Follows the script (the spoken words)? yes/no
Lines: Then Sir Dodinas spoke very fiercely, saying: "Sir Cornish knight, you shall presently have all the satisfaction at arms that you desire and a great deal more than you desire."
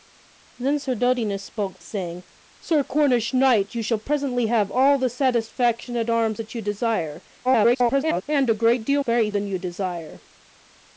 no